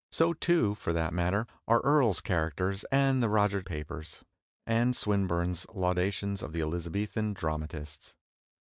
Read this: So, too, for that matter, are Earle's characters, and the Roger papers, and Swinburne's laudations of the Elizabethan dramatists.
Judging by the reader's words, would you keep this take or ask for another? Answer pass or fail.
pass